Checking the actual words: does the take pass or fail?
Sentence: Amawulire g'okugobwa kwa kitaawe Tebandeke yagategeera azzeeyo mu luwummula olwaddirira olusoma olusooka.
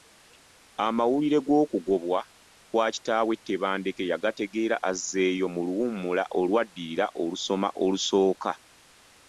pass